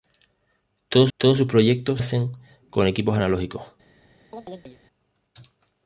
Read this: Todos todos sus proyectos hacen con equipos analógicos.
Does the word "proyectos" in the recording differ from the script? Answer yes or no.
no